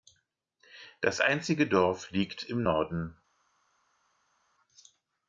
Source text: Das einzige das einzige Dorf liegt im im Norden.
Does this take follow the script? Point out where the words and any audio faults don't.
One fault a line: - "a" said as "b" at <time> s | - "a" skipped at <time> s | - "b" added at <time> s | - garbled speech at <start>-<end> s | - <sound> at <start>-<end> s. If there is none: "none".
- "das einzige" skipped at 1.7 s
- "im" skipped at 2.6 s